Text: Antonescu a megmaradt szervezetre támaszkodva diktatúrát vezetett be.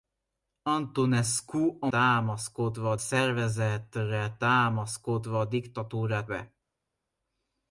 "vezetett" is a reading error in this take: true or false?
true